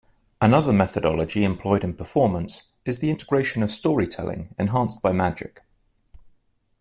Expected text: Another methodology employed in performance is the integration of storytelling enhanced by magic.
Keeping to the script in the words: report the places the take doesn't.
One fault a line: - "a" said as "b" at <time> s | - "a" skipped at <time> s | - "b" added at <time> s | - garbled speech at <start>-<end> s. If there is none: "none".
none